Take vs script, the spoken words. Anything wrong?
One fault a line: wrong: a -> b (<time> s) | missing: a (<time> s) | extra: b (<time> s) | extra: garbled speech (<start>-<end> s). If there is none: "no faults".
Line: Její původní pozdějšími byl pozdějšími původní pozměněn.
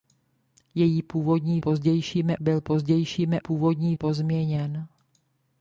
no faults